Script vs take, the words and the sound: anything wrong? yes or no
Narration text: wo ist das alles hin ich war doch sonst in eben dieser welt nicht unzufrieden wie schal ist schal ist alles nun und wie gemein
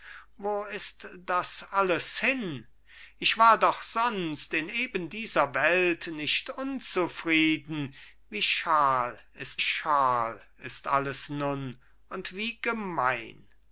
no